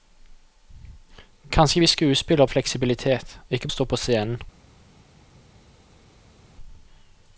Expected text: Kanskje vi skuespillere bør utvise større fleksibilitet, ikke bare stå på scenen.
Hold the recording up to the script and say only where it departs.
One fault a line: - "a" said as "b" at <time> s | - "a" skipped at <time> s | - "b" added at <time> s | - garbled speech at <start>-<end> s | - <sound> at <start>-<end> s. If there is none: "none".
- "bør utvise større" skipped at 2.5 s
- "bare" skipped at 3.7 s